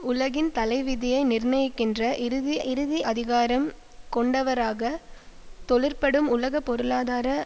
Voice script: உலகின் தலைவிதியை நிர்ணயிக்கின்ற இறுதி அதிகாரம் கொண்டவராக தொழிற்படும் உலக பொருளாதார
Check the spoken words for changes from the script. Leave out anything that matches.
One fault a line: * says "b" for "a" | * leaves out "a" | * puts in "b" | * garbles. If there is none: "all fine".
* puts in "இறுதி"